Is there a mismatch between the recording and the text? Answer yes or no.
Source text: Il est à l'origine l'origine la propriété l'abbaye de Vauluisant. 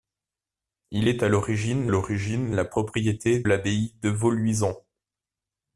no